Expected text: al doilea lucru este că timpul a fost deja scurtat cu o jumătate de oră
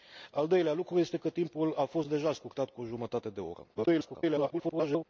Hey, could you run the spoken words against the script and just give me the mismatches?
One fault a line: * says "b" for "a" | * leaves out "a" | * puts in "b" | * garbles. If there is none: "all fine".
* garbles